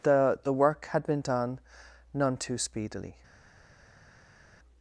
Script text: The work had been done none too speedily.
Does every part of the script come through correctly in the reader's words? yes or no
no